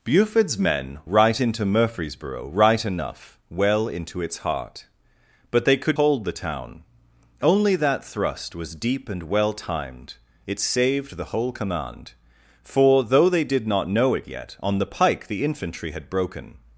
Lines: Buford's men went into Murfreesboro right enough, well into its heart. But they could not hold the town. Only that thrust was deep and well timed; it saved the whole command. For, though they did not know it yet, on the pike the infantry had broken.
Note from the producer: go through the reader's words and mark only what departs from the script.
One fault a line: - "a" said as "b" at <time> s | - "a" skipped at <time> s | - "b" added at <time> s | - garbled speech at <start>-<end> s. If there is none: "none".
- "went" said as "right" at 1.0 s
- "not" skipped at 6.0 s